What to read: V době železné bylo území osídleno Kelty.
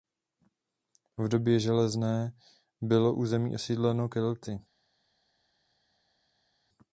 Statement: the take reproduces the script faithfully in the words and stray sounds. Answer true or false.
true